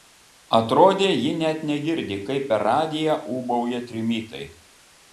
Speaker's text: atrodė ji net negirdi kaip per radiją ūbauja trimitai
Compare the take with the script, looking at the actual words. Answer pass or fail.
pass